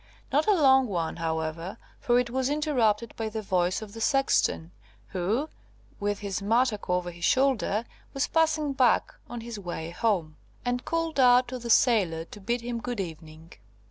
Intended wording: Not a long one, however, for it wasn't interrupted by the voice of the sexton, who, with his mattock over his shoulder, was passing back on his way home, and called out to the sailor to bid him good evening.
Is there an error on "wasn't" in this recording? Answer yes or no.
yes